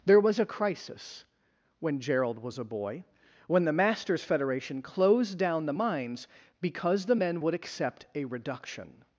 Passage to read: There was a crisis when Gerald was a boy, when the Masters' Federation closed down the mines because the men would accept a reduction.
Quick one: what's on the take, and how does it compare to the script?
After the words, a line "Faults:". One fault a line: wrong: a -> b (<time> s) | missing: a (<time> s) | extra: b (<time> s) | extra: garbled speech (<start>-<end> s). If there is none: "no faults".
There was a crisis when Gerald was a boy, when the Masters' Federation closed down the mines because the men would accept a reduction.
Faults:
no faults